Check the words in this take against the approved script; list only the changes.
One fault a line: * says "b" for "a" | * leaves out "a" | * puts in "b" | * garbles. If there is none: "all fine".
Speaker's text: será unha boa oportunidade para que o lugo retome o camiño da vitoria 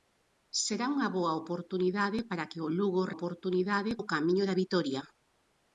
* says "oportunidade" for "retome"